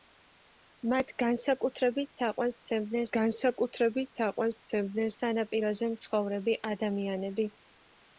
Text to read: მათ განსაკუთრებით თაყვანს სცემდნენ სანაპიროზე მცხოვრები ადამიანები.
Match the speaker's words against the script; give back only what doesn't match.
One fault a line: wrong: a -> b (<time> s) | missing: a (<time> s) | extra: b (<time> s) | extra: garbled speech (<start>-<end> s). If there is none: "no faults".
extra: განსაკუთრებით თაყვანს სცემდნენ (3.2 s)